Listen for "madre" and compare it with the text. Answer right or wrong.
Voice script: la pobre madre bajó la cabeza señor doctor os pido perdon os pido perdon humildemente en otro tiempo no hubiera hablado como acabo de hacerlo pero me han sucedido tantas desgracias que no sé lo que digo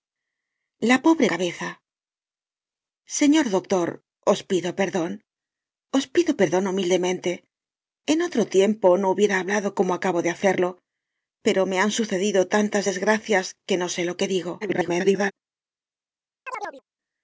wrong